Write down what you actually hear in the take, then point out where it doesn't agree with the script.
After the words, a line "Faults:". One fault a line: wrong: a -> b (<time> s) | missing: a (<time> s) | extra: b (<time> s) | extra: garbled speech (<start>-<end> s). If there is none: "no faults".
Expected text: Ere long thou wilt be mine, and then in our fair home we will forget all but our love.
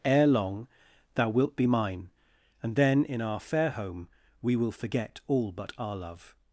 Ere long thou wilt be mine, and then in our fair home we will forget all but our love.
Faults:
no faults